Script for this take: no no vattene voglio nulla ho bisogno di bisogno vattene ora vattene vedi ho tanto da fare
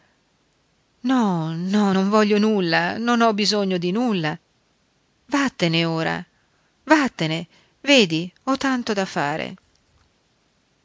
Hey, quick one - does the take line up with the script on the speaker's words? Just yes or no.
no